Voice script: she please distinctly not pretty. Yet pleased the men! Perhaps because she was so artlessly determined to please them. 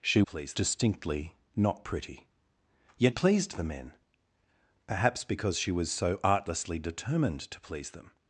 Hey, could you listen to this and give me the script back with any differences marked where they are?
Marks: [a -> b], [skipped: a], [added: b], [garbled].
she please distinctly not pretty. Yet pleased the men! Perhaps because she was so artlessly determined to please them.